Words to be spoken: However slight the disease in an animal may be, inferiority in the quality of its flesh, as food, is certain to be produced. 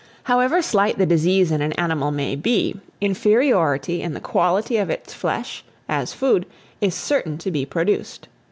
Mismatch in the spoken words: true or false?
false